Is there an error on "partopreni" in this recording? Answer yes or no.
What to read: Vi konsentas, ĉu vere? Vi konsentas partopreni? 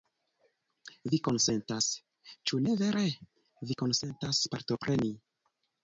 no